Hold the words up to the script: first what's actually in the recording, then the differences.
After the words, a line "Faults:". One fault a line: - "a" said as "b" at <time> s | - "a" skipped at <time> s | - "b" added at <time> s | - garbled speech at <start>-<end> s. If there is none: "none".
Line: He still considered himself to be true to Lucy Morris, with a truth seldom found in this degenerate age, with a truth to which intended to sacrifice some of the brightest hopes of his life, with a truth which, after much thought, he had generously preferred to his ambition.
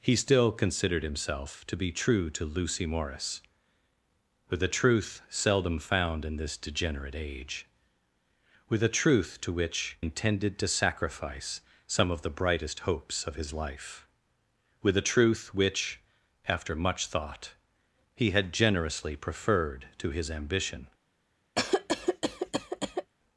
He still considered himself to be true to Lucy Morris, with a truth seldom found in this degenerate age, with a truth to which intended to sacrifice some of the brightest hopes of his life, with a truth which, after much thought, he had generously preferred to his ambition.
Faults:
none